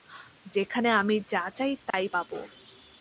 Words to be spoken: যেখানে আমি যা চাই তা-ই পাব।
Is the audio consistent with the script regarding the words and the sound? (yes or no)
no